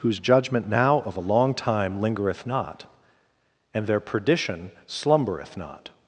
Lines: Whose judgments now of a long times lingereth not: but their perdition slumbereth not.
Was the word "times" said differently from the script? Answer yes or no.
yes